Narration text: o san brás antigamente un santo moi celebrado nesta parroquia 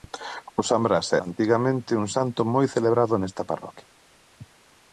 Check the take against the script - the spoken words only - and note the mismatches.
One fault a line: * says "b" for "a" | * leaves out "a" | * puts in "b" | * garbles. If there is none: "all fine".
all fine